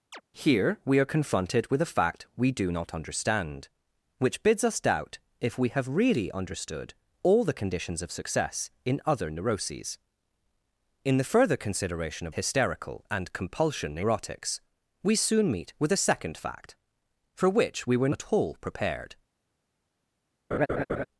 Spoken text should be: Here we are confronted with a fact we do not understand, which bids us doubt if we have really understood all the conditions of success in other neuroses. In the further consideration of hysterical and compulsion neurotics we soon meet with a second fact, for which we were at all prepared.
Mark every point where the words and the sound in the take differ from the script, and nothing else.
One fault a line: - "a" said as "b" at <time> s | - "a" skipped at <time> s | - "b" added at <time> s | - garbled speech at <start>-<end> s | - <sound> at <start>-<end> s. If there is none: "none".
- chirp at 0.1-0.2 s
- laugh at 20.5-21.1 s